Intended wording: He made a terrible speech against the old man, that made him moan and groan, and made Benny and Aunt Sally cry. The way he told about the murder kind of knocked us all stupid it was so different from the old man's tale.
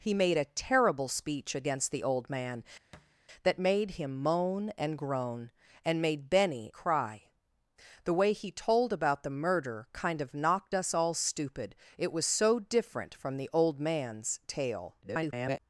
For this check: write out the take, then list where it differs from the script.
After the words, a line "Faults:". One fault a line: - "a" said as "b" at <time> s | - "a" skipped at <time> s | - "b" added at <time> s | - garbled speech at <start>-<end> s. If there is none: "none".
He made a terrible speech against the old man, that made him moan and groan, and made Benny cry. The way he told about the murder kind of knocked us all stupid it was so different from the old man's tale. [garbled]
Faults:
- "and Aunt Sally" skipped at 6.7 s
- garbled speech at 15.0-15.6 s